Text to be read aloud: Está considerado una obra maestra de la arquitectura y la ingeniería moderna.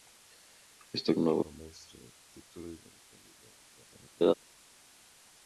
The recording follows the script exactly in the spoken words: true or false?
false